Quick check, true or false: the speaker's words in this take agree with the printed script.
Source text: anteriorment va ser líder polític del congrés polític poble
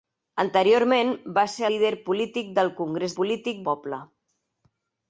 true